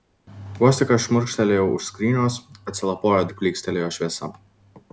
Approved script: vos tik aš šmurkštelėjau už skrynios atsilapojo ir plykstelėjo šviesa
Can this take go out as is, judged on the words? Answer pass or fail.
pass